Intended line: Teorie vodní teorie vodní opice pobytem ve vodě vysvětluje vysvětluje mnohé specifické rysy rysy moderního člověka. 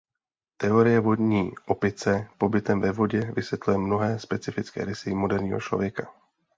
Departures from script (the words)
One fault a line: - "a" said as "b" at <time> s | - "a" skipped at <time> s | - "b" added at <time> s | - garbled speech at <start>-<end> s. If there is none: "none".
- "teorie vodní" skipped at 1.5 s
- "vysvětluje" skipped at 3.8 s
- "rysy" skipped at 5.1 s